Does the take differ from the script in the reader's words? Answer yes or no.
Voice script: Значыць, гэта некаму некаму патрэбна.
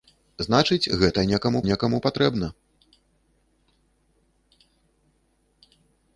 no